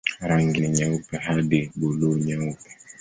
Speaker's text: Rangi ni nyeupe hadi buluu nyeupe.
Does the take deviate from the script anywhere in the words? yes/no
no